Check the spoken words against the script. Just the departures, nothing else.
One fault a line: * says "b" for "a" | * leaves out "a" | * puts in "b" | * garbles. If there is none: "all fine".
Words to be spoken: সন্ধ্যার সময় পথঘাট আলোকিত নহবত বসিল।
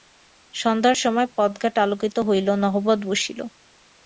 * puts in "হইল"